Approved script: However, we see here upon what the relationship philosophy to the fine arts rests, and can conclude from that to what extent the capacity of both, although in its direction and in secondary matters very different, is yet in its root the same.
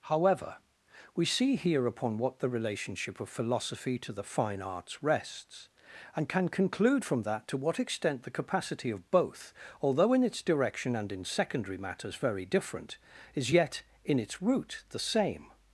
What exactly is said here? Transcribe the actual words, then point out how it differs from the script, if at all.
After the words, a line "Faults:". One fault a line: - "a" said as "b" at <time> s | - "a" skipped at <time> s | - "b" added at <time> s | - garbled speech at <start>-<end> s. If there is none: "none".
However, we see here upon what the relationship of philosophy to the fine arts rests, and can conclude from that to what extent the capacity of both, although in its direction and in secondary matters very different, is yet in its root the same.
Faults:
- "of" added at 3.2 s